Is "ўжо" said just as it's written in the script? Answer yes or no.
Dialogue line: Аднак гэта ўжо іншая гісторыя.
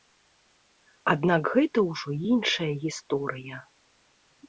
yes